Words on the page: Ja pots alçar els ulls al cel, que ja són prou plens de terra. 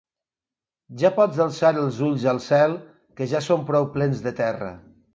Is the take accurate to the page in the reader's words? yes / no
yes